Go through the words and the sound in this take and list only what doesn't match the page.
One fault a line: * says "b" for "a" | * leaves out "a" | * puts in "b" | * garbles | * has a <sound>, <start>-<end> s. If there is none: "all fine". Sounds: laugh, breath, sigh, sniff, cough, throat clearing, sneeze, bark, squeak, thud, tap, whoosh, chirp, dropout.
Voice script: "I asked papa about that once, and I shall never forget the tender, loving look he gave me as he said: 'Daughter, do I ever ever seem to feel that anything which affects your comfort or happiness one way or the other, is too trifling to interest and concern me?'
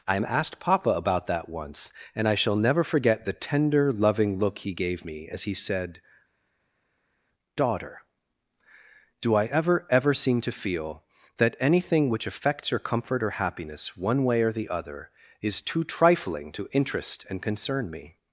all fine